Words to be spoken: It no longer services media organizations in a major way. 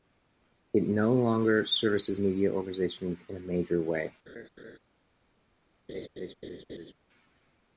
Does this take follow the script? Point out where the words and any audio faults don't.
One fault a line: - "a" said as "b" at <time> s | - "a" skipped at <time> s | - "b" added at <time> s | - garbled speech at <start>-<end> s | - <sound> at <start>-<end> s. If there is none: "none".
- laugh at 4.3-4.8 s
- laugh at 5.9-6.9 s